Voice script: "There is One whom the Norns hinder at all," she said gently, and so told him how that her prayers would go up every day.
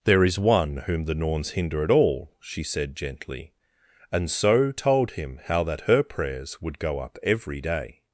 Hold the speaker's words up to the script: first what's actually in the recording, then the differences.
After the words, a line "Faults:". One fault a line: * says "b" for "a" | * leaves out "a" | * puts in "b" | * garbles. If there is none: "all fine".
"There is One whom the Norns hinder at all," she said gently, and so told him how that her prayers would go up every day.
Faults:
all fine